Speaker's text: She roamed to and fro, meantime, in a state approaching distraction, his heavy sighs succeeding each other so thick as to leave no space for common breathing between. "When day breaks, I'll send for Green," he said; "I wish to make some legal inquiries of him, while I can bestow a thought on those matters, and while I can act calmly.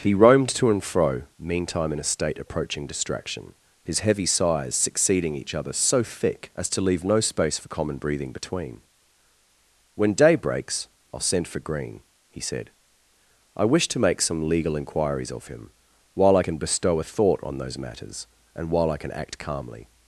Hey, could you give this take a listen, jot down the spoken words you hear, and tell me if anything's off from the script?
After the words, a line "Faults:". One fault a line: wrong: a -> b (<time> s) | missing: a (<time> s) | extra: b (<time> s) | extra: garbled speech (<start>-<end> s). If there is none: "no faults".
He roamed to and fro, meantime, in a state approaching distraction, his heavy sighs succeeding each other so thick as to leave no space for common breathing between. "When day breaks, I'll send for Green," he said; "I wish to make some legal inquiries of him, while I can bestow a thought on those matters, and while I can act calmly.
Faults:
wrong: She -> He (0.0 s)